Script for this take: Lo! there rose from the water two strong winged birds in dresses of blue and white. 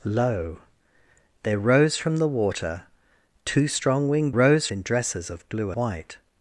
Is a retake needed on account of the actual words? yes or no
yes